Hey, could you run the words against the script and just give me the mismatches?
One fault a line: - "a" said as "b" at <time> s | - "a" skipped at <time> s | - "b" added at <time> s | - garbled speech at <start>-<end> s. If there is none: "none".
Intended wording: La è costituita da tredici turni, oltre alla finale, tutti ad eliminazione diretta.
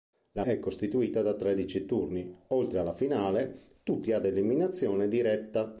none